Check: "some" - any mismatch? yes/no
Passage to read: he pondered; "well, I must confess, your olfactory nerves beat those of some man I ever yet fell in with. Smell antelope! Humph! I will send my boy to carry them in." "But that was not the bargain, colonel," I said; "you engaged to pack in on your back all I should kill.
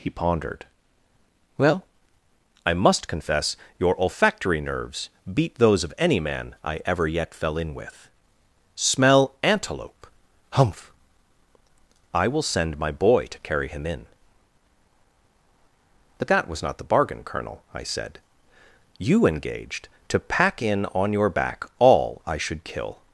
yes